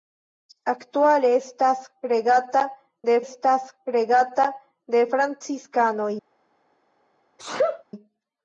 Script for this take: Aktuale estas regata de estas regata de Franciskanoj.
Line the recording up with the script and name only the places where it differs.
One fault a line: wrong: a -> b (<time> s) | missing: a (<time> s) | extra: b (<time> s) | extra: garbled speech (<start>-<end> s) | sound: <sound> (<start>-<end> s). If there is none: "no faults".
sound: sneeze (7.4-7.8 s)